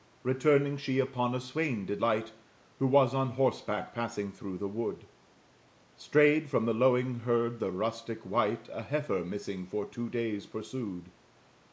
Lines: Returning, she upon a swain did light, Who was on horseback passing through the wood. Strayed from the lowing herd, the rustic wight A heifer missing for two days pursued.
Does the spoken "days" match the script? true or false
true